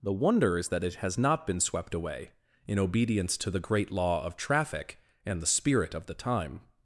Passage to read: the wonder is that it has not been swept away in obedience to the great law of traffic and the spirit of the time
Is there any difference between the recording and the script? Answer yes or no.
no